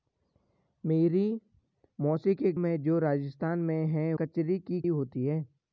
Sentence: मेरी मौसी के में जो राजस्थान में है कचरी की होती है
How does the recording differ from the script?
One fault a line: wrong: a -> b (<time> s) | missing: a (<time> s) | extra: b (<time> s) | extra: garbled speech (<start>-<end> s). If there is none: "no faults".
no faults